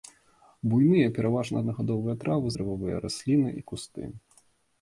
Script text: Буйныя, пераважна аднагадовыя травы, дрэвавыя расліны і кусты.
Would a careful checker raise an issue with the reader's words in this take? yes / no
no